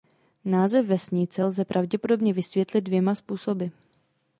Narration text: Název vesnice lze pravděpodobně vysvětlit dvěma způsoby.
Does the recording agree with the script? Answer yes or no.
yes